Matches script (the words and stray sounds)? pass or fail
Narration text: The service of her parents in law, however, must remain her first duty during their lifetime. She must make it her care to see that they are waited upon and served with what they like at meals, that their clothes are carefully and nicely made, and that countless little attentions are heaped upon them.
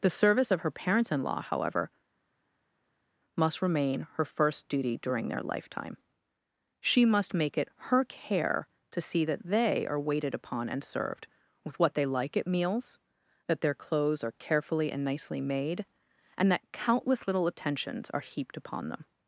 pass